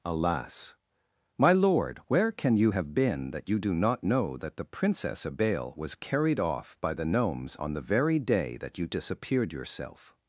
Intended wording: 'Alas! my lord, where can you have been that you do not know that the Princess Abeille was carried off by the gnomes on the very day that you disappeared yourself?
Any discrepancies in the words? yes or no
no